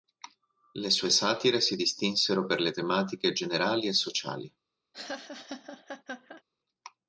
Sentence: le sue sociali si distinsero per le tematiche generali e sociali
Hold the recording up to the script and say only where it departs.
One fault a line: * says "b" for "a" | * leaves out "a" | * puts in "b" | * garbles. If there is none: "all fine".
* says "satire" for "sociali"